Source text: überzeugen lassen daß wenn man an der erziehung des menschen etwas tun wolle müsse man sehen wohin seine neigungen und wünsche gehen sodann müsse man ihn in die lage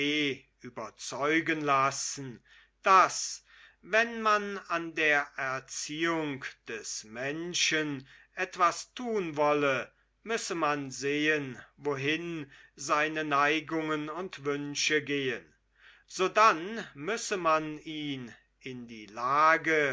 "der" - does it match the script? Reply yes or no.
yes